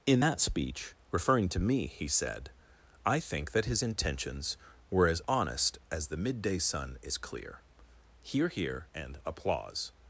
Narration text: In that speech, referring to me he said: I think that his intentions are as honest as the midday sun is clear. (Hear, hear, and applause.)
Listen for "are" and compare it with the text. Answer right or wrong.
wrong